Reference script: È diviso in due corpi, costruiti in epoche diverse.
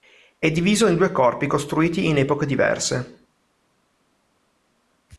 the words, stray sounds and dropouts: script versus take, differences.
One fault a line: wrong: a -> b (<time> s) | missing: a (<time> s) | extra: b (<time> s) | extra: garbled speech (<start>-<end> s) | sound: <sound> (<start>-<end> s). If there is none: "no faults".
no faults